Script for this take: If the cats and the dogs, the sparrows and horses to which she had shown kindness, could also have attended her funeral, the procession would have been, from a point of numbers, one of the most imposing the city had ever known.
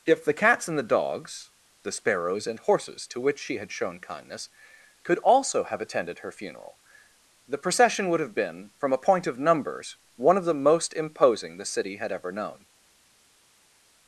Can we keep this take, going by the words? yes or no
yes